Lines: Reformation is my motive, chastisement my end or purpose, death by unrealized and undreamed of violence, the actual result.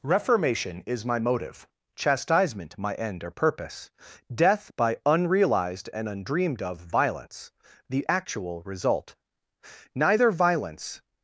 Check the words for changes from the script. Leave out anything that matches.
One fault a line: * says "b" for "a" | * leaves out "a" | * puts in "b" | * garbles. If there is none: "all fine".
* puts in "Neither violence"